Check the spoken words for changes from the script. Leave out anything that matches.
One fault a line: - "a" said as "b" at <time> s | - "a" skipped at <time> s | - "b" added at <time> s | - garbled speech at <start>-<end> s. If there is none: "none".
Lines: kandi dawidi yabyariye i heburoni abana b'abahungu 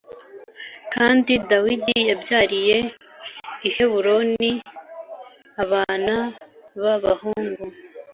none